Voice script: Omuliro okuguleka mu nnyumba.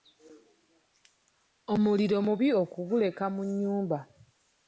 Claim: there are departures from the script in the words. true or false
true